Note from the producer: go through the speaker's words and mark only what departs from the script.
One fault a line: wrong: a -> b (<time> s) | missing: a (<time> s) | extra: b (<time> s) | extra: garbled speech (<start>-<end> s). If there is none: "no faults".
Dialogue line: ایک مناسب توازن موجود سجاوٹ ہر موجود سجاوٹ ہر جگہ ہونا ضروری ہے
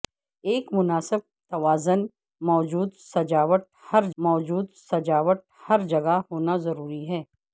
no faults